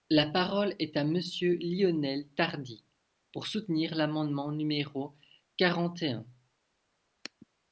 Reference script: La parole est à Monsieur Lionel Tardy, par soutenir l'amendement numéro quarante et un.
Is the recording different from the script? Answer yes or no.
yes